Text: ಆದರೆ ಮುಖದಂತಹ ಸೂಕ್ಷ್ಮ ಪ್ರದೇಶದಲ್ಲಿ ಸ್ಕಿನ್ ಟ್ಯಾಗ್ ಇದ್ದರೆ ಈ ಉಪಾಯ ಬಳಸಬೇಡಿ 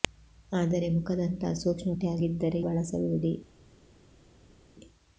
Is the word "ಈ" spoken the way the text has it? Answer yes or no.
no